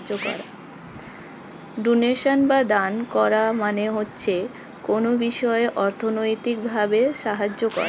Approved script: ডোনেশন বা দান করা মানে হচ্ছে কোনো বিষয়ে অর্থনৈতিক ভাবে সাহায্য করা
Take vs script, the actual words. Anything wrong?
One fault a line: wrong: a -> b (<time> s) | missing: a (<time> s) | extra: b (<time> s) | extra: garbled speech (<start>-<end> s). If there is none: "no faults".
no faults